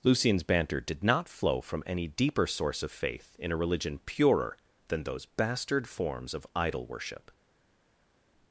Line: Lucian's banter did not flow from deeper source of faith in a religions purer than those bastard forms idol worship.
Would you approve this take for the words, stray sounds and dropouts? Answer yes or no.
no